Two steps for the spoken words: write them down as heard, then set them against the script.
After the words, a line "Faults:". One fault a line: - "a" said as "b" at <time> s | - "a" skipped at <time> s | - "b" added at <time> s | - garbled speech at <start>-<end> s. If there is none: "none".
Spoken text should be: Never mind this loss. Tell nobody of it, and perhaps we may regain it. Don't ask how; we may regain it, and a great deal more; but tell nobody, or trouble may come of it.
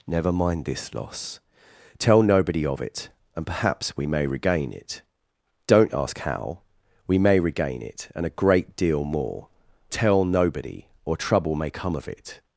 Never mind this loss. Tell nobody of it, and perhaps we may regain it. Don't ask how; we may regain it, and a great deal more; tell nobody, or trouble may come of it.
Faults:
- "but" skipped at 9.5 s